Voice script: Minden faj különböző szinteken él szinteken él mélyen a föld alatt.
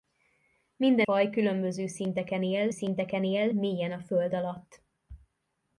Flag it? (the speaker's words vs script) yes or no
no